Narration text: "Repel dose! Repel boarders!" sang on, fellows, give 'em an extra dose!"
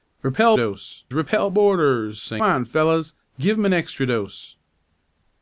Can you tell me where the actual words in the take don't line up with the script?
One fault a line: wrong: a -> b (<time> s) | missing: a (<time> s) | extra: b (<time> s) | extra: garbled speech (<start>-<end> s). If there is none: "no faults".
no faults